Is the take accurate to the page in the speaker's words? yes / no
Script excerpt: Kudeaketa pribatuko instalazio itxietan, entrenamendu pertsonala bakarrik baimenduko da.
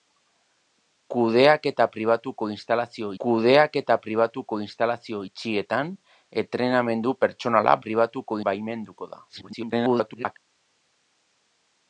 no